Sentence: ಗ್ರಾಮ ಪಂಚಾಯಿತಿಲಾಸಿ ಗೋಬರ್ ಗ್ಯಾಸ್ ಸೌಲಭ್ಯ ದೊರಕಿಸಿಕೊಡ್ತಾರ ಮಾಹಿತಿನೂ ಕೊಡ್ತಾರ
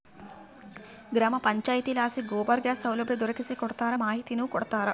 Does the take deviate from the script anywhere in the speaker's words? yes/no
no